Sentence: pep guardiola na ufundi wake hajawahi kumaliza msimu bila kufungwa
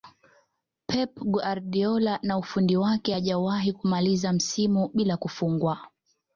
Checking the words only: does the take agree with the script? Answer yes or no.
yes